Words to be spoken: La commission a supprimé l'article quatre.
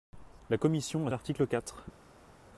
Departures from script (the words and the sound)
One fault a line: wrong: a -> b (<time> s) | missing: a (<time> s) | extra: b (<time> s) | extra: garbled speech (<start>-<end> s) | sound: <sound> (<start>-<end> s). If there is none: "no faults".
missing: supprimé (1.1 s)